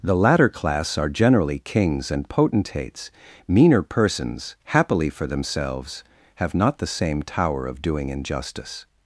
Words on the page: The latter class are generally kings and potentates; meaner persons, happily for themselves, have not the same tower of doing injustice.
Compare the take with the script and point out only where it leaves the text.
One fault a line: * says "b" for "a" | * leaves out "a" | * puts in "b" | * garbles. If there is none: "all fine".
all fine